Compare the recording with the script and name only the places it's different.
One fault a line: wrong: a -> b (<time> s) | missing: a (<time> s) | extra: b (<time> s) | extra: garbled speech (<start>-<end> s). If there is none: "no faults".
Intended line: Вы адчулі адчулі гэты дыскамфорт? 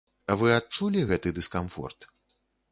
missing: адчулі (1.1 s)